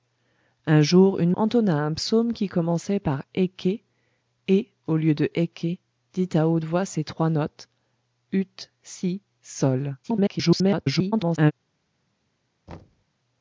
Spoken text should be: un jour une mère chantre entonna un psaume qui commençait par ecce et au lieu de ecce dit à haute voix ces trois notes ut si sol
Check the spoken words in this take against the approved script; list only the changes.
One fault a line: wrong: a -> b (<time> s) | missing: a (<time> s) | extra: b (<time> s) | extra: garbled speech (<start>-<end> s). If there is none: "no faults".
missing: mère chantre (1.3 s)
extra: garbled speech (10.0-11.5 s)